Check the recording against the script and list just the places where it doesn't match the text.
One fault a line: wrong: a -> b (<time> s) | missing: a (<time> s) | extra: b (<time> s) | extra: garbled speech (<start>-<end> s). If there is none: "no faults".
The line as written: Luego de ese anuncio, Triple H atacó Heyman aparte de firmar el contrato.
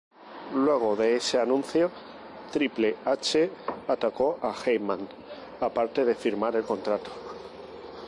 extra: a (4.4 s)